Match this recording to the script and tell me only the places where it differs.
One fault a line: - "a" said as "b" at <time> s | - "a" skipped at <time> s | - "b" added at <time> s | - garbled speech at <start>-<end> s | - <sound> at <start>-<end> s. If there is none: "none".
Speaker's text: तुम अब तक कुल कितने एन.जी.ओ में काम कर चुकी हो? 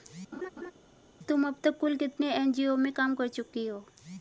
- laugh at 0.3-0.7 s